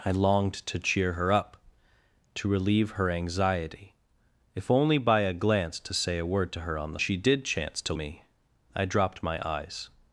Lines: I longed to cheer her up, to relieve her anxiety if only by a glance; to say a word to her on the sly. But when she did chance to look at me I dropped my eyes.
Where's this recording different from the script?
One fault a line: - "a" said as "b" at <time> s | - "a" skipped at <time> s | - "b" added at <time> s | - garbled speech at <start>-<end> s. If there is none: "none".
- "sly But when" skipped at 7.0 s
- "look at" skipped at 7.9 s